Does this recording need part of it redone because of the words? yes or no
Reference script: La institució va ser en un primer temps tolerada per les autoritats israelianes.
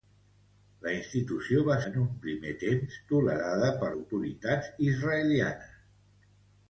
yes